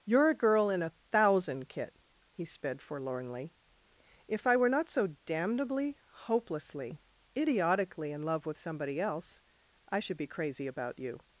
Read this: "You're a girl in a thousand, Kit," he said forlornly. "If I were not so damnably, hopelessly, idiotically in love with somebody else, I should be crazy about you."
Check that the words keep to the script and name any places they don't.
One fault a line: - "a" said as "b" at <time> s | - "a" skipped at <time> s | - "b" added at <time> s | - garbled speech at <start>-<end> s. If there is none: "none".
- "said" said as "sped" at 2.4 s